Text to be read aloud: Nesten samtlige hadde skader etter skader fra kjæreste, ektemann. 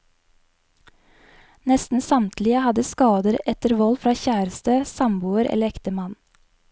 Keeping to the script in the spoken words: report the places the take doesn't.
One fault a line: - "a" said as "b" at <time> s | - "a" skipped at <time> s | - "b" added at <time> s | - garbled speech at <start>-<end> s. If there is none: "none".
- "skader" said as "vold" at 3.8 s
- "samboer eller" added at 5.0 s